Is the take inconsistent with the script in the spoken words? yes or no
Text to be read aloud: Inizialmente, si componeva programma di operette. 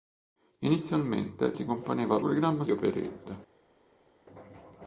no